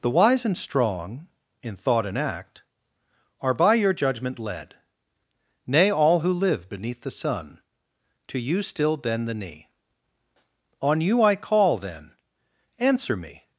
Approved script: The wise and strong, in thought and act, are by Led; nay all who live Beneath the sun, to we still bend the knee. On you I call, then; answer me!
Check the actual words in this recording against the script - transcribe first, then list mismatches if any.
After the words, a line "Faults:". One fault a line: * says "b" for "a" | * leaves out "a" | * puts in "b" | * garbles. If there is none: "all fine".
The wise and strong, in thought and act, are by Your judgment led; nay all who live Beneath the sun, to you still bend the knee. On you I call, then; answer me!
Faults:
* puts in "Your judgment"
* says "you" for "we"